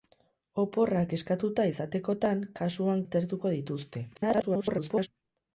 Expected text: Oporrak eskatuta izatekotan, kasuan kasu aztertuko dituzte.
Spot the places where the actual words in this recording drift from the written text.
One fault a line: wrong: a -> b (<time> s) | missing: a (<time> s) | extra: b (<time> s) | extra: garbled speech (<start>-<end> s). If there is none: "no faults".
missing: kasu (3.0 s)
extra: garbled speech (4.1-5.1 s)